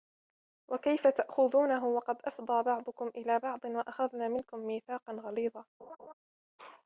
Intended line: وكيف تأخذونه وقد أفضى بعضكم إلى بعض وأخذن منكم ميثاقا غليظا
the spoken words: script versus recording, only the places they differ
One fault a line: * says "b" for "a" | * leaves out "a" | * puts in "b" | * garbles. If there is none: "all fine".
all fine